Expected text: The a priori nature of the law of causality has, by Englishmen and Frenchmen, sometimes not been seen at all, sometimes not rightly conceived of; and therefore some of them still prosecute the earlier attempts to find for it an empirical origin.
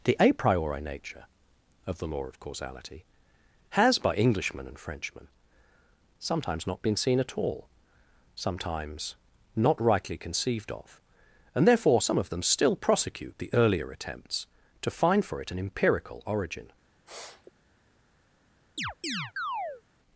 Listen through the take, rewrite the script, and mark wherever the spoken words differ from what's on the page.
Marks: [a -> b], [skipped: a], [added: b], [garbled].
The a priori nature of the law of causality has, by Englishmen and Frenchmen, sometimes not been seen at all, sometimes not rightly conceived of; and therefore some of them still prosecute the earlier attempts to find for it an empirical origin.